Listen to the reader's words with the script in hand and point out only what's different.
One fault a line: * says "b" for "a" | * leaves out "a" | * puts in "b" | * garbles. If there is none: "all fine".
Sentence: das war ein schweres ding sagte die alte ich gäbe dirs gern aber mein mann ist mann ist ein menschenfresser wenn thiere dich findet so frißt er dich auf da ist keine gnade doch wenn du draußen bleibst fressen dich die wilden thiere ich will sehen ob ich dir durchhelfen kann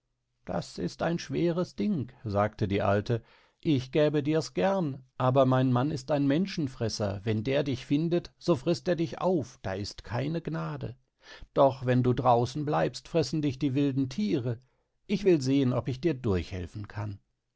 * says "ist" for "war"
* leaves out "mann ist"
* says "der" for "thiere"